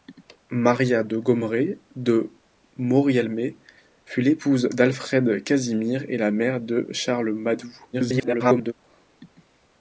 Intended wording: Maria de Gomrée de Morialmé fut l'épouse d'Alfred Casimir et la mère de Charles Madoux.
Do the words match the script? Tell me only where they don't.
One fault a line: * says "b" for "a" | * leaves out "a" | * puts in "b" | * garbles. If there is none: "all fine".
* garbles